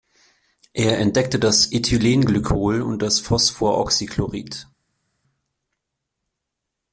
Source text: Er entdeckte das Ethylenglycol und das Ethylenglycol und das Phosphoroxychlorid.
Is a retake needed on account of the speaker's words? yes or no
yes